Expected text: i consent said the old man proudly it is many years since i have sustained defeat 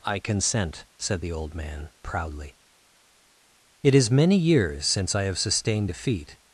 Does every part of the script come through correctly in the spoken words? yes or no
yes